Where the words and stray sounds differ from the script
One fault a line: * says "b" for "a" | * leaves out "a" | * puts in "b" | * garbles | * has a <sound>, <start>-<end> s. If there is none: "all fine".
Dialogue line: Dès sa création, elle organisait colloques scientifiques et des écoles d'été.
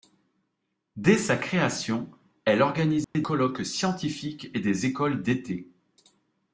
* has a dropout, 3.0-3.1 s